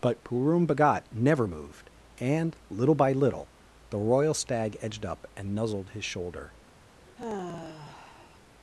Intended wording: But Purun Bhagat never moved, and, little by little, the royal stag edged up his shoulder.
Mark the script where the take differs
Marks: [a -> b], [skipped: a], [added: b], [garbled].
But Purun Bhagat never moved, and, little by little, the royal stag edged up [added: and nuzzled] his shoulder.